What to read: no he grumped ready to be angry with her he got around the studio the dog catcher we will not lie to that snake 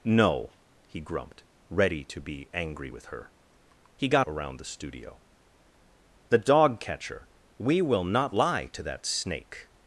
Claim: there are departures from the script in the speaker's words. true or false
false